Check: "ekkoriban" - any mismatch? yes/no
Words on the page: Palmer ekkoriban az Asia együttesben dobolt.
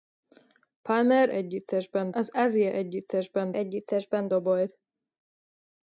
yes